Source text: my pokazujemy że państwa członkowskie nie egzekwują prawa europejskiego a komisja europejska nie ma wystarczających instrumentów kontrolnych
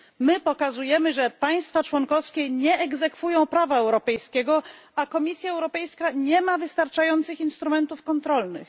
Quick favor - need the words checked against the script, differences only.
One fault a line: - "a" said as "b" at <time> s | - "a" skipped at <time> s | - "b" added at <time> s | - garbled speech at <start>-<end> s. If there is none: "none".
none